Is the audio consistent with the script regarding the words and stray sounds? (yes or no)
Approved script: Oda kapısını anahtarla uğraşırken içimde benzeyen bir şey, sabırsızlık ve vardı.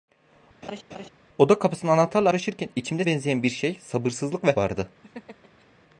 no